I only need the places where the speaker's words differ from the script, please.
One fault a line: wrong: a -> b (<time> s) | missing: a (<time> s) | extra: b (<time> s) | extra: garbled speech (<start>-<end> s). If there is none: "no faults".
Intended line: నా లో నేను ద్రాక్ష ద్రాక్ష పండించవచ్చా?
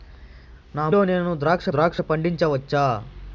no faults